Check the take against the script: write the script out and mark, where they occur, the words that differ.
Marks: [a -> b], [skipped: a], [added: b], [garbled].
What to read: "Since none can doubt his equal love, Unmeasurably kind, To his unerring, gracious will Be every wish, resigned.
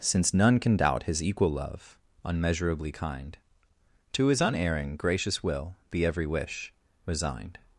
"Since none can doubt his equal love, Unmeasurably kind, To his unerring, gracious will Be every wish, resigned.